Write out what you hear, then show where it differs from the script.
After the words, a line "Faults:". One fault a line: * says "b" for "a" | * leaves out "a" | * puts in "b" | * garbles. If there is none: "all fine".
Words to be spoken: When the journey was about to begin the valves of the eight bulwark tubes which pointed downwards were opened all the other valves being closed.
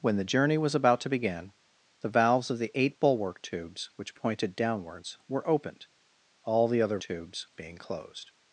When the journey was about to begin the valves of the eight bulwark tubes which pointed downwards were opened all the other tubes being closed.
Faults:
* says "tubes" for "valves"